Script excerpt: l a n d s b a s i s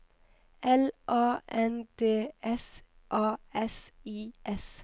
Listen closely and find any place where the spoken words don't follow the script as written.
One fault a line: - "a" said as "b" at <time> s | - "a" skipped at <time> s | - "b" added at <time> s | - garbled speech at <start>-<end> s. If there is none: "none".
- "b" skipped at 2.8 s